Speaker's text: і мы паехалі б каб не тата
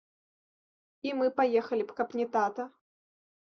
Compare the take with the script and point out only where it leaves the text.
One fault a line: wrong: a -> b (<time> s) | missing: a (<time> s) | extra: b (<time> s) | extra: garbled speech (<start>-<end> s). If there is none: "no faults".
no faults